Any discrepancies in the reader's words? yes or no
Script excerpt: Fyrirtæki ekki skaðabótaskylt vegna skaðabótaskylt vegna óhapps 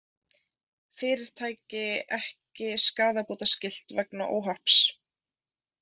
yes